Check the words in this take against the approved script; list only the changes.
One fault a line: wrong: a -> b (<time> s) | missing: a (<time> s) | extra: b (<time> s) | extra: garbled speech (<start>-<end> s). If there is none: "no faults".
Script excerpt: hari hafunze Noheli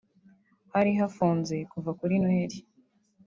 extra: kuva kuri (1.7 s)